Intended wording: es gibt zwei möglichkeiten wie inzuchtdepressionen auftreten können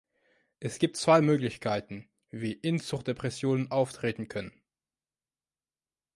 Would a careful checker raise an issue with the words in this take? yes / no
no